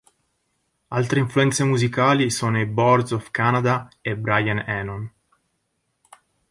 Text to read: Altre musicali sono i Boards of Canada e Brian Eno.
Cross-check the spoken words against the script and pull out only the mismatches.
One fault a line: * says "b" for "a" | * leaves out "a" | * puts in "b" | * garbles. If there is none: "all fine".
* puts in "influenze"